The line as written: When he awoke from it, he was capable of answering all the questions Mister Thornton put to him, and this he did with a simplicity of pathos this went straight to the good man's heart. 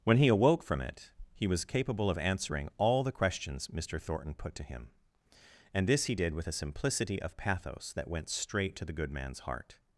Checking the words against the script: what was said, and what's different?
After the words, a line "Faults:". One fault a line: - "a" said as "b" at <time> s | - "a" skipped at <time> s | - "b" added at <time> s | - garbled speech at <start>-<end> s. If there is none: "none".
When he awoke from it, he was capable of answering all the questions Mister Thornton put to him, and this he did with a simplicity of pathos that went straight to the good man's heart.
Faults:
- "this" said as "that" at 8.0 s